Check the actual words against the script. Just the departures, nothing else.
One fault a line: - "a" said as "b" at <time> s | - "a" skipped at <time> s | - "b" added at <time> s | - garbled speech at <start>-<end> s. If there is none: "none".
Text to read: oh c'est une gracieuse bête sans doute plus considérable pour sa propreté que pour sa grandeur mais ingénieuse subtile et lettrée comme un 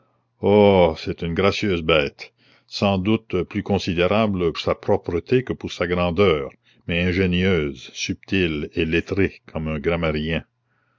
- "pour" skipped at 4.5 s